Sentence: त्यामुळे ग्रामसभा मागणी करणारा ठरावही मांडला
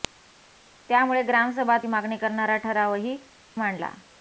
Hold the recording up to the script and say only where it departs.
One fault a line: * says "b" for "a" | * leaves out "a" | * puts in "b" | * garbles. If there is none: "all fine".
all fine